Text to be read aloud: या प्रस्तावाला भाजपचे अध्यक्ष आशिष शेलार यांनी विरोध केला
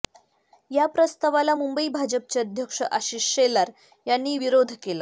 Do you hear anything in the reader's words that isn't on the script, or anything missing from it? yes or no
yes